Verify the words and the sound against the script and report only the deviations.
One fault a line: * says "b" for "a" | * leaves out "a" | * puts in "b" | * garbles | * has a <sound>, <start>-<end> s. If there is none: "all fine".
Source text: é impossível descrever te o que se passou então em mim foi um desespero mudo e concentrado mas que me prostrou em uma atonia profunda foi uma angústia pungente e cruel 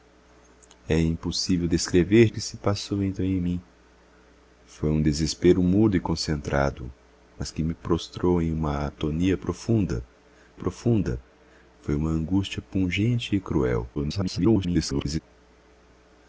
* leaves out "te"
* puts in "profunda"
* garbles